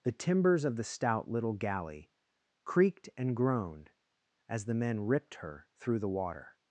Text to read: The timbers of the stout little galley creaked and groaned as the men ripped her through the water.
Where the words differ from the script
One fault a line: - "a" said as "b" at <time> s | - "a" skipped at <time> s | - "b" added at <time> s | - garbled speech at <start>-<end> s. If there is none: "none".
none